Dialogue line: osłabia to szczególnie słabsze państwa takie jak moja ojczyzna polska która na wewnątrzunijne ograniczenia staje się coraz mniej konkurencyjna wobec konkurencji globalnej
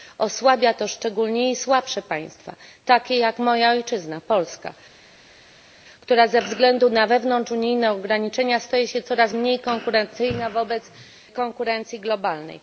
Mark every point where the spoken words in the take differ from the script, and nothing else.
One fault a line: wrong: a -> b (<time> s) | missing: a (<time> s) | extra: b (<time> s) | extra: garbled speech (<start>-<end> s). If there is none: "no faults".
extra: ze względu (6.3 s)